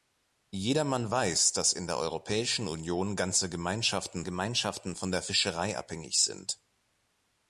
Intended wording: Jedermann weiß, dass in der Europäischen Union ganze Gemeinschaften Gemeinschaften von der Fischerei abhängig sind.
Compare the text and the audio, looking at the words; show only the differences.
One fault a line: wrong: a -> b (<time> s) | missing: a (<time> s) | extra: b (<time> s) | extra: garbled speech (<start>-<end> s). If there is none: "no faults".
no faults